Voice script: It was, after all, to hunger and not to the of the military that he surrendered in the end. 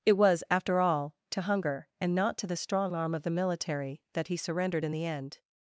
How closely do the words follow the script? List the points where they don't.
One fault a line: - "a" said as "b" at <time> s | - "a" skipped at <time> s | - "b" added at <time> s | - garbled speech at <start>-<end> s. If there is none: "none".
- "strong arm" added at 2.5 s